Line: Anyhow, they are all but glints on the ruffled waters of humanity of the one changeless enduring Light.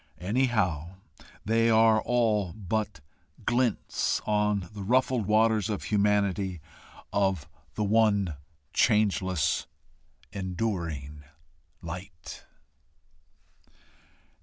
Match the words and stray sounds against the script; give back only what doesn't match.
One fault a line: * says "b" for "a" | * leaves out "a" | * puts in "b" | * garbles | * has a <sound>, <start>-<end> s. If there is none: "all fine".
all fine